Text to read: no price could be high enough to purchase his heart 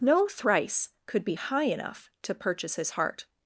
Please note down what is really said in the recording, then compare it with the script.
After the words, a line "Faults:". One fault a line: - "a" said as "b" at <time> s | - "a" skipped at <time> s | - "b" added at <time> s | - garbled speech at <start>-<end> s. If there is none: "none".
no thrice could be high enough to purchase his heart
Faults:
- "price" said as "thrice" at 0.3 s